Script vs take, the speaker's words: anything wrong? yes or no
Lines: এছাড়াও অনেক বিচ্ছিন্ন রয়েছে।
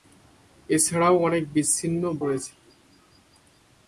no